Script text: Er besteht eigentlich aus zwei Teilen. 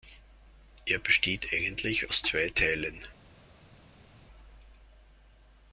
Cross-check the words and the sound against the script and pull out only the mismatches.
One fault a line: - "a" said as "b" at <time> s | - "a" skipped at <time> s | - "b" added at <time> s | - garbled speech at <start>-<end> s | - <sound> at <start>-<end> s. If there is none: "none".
none